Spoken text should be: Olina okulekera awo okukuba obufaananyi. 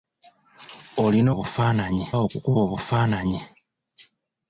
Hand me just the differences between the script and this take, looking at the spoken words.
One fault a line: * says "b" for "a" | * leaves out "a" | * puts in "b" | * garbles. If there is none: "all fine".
* says "obufaananyi" for "okulekera"